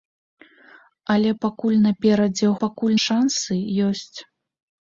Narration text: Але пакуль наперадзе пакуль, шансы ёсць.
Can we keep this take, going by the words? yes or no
yes